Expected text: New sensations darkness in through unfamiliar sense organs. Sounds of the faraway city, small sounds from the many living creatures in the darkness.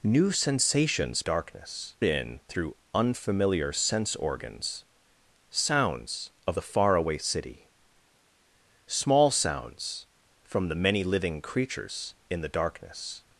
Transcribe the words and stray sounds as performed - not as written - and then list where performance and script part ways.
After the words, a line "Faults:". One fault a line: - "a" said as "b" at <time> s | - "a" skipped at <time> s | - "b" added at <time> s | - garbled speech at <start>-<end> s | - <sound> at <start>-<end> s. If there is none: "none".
New sensations darkness in through unfamiliar sense organs. Sounds of the faraway city, small sounds from the many living creatures in the darkness.
Faults:
none